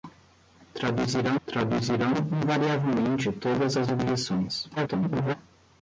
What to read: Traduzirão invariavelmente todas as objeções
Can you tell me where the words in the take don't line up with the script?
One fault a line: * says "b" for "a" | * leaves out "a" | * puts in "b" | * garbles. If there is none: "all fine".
* puts in "traduzirão"
* garbles